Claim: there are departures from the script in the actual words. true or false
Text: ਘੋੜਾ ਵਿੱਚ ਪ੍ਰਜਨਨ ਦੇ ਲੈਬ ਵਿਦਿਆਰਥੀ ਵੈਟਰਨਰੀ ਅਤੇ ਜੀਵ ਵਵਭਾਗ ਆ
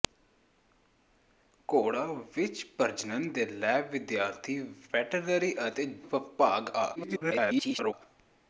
true